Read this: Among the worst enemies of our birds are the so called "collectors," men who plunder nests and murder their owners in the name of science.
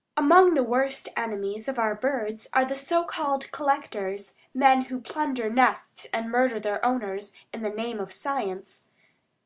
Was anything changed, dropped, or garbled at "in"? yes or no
no